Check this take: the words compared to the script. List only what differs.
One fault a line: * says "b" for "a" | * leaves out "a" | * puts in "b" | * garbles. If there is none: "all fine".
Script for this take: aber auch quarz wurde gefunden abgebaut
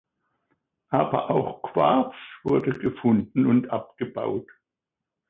* puts in "und"